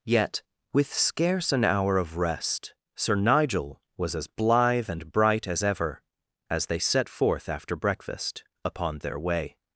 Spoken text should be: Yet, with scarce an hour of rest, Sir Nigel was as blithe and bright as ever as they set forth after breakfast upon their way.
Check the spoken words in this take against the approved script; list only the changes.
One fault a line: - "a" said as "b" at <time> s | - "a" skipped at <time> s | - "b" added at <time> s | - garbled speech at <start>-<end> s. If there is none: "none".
none